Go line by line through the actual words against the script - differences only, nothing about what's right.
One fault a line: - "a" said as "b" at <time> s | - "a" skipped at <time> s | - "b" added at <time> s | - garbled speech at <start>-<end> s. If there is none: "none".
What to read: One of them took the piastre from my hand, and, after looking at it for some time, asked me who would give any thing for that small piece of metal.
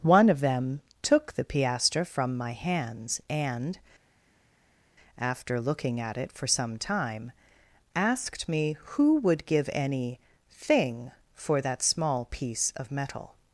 - "hand" said as "hands" at 2.5 s